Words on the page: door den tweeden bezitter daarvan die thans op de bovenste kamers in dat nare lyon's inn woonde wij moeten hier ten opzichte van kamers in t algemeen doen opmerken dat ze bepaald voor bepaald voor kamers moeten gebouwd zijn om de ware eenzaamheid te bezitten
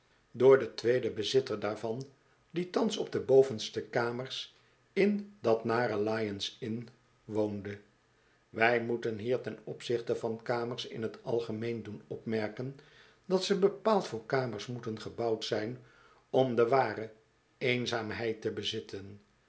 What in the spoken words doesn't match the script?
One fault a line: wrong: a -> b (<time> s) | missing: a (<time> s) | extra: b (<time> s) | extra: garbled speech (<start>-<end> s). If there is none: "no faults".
missing: bepaald voor (14.2 s)